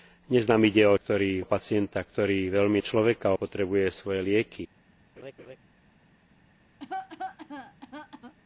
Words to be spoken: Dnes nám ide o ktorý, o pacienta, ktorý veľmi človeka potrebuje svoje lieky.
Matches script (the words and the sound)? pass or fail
fail